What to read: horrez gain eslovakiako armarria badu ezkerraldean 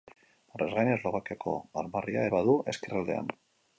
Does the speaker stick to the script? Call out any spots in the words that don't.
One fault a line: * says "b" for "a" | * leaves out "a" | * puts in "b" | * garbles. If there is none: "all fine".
all fine